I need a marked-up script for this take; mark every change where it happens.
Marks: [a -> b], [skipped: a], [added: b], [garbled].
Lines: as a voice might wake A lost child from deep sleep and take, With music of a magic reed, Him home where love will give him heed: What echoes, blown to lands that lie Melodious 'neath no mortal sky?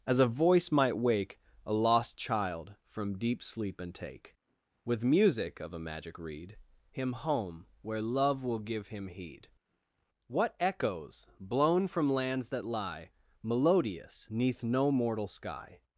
as a voice might wake A lost child from deep sleep and take, With music of a magic reed, Him home where love will give him heed: What echoes, blown [to -> from] lands that lie Melodious 'neath no mortal sky?